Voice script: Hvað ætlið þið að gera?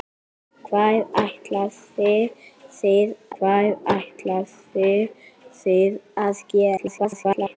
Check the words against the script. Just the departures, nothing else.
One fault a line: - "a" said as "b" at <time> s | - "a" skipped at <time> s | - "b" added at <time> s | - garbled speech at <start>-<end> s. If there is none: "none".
- "hvað ætlið þið" added at 3.4 s
- garbled speech at 6.8-7.6 s